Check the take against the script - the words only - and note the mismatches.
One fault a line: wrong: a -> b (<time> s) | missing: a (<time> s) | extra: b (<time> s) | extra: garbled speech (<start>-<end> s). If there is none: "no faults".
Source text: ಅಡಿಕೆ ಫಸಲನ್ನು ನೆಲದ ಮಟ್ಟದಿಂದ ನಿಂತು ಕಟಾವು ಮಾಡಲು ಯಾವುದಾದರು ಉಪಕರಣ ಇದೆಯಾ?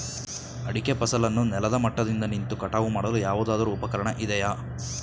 no faults